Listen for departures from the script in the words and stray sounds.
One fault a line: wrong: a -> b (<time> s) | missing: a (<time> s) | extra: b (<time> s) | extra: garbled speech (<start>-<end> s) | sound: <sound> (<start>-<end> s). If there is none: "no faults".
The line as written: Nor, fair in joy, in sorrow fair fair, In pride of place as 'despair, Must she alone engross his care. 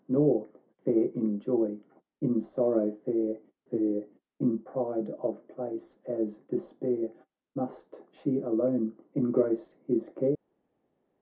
no faults